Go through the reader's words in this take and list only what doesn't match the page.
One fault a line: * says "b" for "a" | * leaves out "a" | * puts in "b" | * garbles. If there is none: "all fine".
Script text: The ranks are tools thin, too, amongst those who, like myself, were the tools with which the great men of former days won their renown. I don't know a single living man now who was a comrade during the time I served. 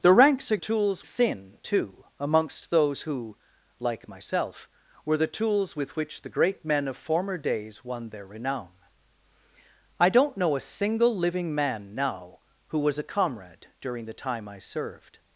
all fine